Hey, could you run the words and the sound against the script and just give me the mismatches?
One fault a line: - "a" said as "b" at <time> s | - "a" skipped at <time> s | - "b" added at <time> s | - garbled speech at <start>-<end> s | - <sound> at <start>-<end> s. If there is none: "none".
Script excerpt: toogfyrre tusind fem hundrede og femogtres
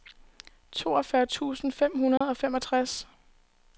- dropout at 2.2-2.2 s